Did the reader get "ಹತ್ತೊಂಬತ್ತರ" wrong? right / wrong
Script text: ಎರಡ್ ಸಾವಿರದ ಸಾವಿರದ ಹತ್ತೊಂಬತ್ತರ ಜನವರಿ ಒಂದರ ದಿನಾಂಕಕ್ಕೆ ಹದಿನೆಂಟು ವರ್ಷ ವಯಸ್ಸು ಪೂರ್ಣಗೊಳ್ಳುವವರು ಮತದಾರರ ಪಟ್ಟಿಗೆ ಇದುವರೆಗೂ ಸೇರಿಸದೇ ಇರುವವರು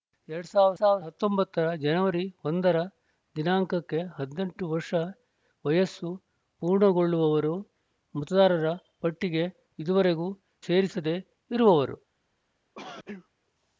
right